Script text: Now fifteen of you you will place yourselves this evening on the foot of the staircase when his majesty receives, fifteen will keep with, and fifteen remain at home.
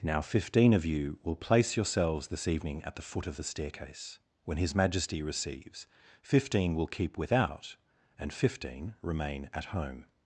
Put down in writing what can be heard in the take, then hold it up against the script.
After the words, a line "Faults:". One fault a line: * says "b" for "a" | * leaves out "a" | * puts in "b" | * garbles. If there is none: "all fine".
Now fifteen of you will place yourselves this evening at the foot of the staircase when his majesty receives, fifteen will keep without, and fifteen remain at home.
Faults:
* leaves out "you"
* says "at" for "on"
* says "without" for "with"